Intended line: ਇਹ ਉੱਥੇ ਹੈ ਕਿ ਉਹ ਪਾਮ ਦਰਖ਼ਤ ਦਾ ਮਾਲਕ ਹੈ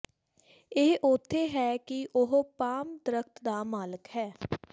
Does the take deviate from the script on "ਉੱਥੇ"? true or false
false